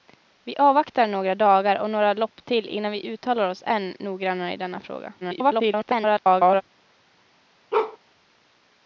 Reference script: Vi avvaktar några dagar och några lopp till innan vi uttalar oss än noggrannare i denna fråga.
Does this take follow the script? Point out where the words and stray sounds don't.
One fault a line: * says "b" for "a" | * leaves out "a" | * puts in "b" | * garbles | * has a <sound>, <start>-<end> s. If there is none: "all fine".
* garbles
* has a bark, 7.7-8.0 s